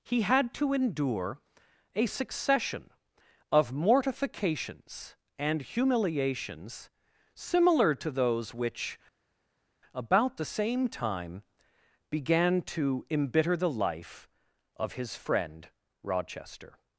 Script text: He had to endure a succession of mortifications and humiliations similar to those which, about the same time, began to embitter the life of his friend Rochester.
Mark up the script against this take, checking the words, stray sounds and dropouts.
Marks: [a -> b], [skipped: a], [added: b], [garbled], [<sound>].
He had to endure a succession of mortifications and humiliations similar to those which, about the same time, began to embitter the life of his friend Rochester.